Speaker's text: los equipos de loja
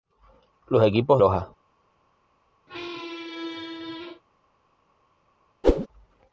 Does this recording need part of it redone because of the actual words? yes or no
yes